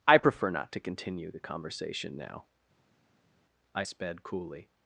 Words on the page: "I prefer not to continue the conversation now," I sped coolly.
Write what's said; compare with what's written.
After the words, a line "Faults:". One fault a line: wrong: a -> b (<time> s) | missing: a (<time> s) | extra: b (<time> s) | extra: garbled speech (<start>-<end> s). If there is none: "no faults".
"I prefer not to continue the conversation now," I sped coolly.
Faults:
no faults